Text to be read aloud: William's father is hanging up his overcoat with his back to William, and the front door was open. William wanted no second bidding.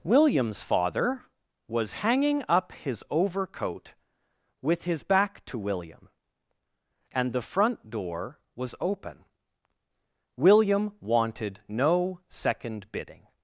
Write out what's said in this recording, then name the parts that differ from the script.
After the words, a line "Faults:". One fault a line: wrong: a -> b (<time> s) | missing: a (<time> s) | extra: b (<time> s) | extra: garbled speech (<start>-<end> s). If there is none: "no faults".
William's father was hanging up his overcoat with his back to William, and the front door was open. William wanted no second bidding.
Faults:
wrong: is -> was (1.7 s)